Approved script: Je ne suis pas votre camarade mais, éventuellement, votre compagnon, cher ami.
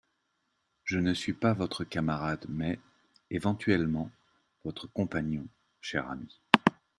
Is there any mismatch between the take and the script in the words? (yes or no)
no